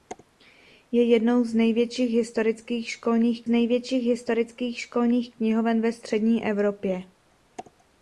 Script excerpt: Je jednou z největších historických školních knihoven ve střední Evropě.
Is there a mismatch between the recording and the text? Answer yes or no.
yes